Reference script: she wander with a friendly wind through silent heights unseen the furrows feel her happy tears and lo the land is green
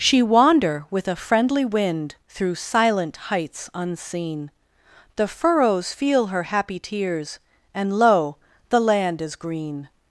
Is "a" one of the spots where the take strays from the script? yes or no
no